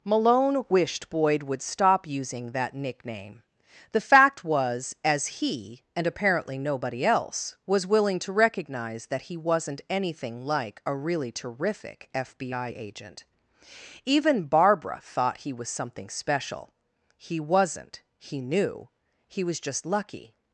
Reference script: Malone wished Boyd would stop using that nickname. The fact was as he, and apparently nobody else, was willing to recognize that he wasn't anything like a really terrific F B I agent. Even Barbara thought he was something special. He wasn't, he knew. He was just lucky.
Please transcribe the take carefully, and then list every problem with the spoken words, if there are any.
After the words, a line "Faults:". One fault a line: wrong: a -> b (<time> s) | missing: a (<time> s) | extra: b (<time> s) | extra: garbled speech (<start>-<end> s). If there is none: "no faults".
Malone wished Boyd would stop using that nickname. The fact was as he, and apparently nobody else, was willing to recognize that he wasn't anything like a really terrific F B I agent. Even Barbara thought he was something special. He wasn't, he knew. He was just lucky.
Faults:
no faults